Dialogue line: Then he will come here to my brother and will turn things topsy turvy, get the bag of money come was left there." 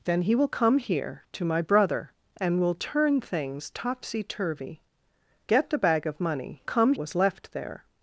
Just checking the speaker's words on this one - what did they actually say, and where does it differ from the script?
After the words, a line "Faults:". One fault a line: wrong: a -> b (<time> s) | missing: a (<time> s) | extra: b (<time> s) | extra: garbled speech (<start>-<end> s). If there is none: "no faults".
Then he will come here to my brother and will turn things topsy turvy, get the bag of money come was left there."
Faults:
no faults